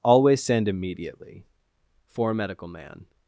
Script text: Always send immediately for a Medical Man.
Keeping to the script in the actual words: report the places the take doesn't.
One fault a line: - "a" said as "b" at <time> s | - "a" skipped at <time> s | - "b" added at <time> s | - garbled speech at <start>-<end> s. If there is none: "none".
none